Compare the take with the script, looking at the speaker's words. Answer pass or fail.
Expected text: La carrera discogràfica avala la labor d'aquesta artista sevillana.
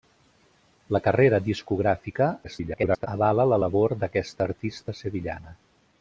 fail